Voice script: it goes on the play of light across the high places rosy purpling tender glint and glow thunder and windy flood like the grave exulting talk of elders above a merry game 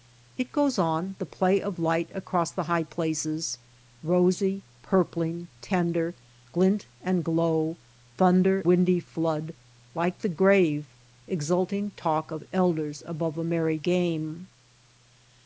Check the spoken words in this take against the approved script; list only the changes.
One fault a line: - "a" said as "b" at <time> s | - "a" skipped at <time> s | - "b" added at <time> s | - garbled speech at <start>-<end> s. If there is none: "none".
- "and" skipped at 8.7 s